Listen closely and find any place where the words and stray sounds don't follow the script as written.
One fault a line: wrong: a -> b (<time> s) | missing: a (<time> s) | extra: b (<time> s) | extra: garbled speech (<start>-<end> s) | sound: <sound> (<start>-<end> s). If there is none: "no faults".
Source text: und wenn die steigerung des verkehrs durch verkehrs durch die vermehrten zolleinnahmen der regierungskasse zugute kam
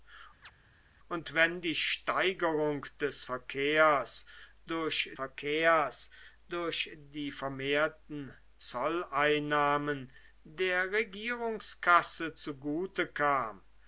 sound: chirp (0.4-0.5 s)